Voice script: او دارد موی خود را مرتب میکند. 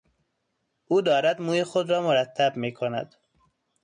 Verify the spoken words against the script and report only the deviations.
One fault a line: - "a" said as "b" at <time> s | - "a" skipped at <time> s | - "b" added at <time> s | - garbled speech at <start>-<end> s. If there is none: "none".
none